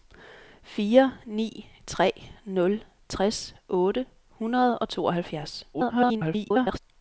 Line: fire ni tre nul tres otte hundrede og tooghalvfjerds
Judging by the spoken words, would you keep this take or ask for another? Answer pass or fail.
fail